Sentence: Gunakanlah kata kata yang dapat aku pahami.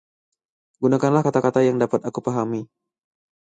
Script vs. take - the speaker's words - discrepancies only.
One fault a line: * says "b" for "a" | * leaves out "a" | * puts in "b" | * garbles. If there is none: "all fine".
all fine